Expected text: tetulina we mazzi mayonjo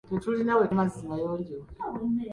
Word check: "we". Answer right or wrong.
right